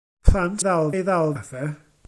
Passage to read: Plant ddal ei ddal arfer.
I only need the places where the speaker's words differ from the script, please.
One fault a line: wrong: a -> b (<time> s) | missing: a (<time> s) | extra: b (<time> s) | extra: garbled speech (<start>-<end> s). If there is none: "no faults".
no faults